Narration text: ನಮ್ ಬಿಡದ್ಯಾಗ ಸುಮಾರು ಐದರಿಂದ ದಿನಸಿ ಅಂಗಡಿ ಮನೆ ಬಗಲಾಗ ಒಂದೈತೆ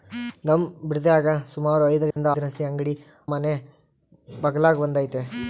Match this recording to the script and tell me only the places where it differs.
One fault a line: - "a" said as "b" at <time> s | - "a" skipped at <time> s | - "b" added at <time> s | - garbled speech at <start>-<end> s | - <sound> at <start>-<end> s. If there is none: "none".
- dropout at 2.1-2.2 s